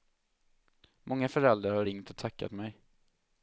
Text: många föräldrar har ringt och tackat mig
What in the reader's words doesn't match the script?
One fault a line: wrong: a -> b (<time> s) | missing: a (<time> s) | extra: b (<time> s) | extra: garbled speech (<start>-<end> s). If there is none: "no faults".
no faults